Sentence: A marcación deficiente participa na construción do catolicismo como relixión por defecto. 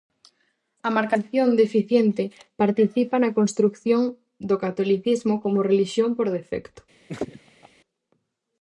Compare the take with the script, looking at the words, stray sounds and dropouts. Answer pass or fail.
fail